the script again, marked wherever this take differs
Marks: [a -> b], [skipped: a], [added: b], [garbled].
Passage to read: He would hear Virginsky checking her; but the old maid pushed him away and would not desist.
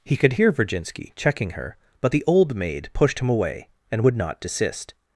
He [would -> could] hear Virginsky checking her; but the old maid pushed him away and would not desist.